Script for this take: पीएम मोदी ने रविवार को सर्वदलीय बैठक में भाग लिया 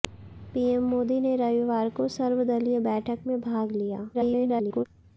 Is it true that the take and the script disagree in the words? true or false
true